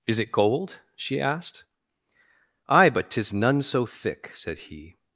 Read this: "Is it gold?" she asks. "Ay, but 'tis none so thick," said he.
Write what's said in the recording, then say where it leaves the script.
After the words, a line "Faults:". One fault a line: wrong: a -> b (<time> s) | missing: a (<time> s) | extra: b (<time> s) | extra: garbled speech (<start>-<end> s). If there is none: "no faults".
"Is it gold?" she asked. "Ay, but 'tis none so thick," said he.
Faults:
wrong: asks -> asked (1.2 s)